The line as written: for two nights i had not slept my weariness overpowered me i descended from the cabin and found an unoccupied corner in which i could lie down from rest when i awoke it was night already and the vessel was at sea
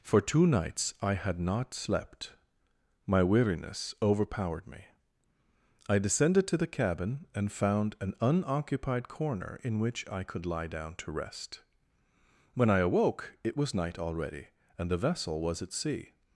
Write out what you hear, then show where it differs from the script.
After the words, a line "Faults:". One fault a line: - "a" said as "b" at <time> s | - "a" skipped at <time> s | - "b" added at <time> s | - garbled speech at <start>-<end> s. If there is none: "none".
for two nights i had not slept my weariness overpowered me i descended to the cabin and found an unoccupied corner in which i could lie down to rest when i awoke it was night already and the vessel was at sea
Faults:
- "from" said as "to" at 6.5 s
- "from" said as "to" at 10.9 s